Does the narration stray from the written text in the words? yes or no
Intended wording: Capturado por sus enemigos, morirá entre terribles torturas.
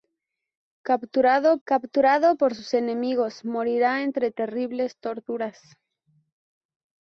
yes